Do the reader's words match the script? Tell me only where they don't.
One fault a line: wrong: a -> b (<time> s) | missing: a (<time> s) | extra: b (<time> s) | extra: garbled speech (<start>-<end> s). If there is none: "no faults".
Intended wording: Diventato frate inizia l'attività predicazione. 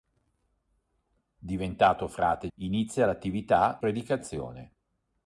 no faults